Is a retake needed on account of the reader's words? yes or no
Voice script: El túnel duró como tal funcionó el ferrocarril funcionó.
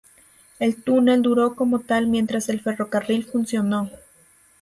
yes